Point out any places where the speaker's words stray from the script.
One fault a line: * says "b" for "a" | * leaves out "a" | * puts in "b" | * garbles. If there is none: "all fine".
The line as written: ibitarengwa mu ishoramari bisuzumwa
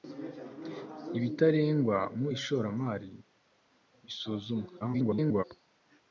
* garbles